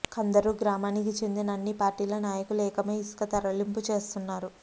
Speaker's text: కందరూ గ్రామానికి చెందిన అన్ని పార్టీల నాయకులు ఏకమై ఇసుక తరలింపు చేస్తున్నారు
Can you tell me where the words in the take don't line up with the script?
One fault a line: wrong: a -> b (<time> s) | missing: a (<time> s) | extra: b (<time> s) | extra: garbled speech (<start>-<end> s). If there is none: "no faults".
no faults